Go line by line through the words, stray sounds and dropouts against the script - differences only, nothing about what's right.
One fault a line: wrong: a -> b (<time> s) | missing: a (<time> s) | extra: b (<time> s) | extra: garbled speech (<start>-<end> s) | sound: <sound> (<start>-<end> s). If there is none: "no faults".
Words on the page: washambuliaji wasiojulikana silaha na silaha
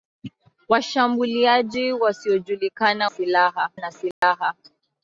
sound: dropout (4.1-4.2 s)